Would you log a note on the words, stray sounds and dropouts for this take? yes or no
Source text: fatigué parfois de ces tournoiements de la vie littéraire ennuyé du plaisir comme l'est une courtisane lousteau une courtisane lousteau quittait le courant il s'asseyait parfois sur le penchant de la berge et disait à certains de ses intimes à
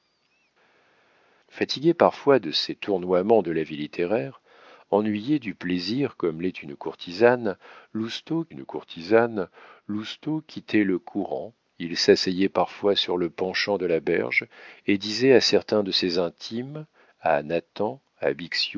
no